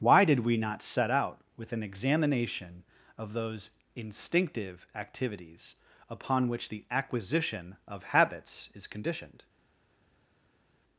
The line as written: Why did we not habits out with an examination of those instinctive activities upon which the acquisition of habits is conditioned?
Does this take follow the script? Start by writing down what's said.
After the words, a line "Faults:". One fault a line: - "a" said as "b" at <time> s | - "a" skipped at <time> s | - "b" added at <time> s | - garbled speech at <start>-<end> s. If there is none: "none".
Why did we not set out with an examination of those instinctive activities upon which the acquisition of habits is conditioned?
Faults:
- "habits" said as "set" at 0.8 s